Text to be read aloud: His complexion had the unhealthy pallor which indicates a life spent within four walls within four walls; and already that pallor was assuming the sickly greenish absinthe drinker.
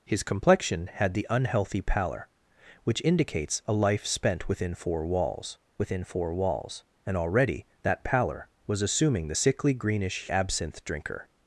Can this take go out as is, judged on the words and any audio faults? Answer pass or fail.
pass